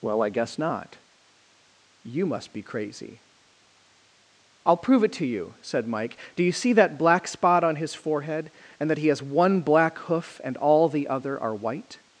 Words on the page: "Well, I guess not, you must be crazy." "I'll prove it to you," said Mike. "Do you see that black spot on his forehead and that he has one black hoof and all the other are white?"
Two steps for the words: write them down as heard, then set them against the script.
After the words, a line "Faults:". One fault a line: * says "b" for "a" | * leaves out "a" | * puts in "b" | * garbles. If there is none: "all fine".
"Well, I guess not, you must be crazy." "I'll prove it to you," said Mike. "Do you see that black spot on his forehead and that he has one black hoof and all the other are white?"
Faults:
all fine